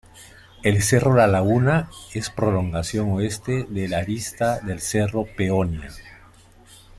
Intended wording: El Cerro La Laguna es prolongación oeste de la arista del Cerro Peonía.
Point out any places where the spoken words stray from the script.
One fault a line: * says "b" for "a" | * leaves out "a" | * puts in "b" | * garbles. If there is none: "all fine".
all fine